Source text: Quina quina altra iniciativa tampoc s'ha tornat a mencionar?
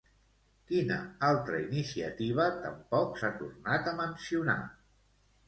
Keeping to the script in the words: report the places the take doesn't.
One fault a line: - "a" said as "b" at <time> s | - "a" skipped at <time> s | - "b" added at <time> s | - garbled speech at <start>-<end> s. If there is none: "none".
- "quina" skipped at 0.9 s